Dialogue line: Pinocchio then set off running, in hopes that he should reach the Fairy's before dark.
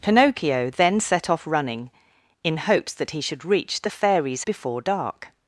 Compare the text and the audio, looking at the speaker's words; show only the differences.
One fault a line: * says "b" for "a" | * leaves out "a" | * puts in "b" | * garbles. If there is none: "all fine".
all fine